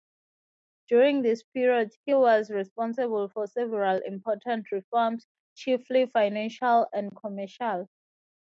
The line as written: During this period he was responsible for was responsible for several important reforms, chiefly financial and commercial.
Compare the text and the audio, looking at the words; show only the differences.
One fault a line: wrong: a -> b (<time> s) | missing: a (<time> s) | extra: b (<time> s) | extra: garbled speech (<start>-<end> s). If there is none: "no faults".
missing: was responsible for (3.5 s)